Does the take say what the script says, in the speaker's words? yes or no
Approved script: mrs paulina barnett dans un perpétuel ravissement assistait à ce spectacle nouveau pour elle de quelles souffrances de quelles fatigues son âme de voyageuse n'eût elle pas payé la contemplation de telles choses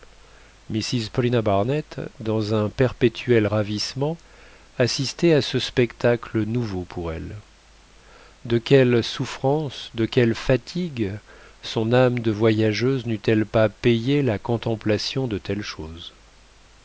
yes